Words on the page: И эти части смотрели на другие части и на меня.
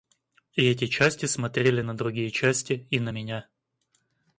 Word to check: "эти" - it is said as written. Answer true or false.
true